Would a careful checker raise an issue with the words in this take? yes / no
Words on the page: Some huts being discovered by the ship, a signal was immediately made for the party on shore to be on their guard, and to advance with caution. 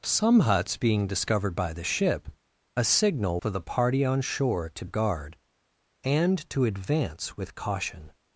yes